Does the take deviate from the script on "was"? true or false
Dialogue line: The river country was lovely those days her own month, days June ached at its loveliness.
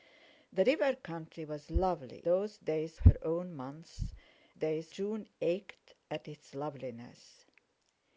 false